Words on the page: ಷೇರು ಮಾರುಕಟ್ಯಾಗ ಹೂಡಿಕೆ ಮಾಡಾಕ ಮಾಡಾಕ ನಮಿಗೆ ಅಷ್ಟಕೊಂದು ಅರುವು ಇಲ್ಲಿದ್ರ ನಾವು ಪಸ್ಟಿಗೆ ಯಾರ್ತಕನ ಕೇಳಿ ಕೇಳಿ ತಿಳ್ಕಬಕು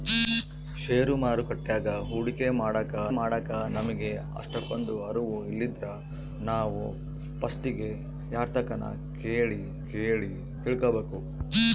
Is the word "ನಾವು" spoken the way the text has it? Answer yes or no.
yes